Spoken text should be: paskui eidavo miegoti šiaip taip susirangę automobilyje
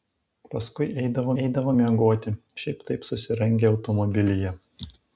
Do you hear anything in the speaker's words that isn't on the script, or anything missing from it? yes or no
yes